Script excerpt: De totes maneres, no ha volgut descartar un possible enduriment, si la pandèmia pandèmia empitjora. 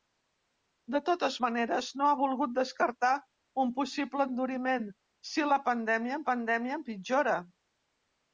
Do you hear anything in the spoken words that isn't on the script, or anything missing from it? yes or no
no